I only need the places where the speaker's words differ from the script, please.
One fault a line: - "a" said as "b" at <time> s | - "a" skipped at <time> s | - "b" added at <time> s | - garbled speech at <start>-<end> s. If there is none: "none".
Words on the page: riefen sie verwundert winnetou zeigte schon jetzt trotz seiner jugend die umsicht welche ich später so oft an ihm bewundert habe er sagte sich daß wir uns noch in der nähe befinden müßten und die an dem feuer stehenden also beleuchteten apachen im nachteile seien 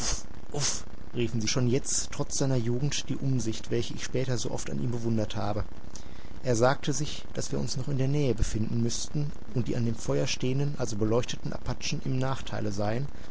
- "verwundert winnetou zeigte" skipped at 1.5 s